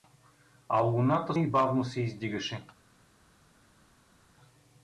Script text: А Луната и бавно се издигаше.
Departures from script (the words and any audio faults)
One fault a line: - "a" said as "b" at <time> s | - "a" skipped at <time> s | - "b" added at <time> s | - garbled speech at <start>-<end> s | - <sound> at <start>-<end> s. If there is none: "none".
none